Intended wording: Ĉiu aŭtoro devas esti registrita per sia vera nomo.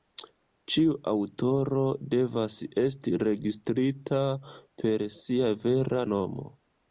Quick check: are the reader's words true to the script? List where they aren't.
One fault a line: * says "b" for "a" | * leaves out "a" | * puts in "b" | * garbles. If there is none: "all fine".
all fine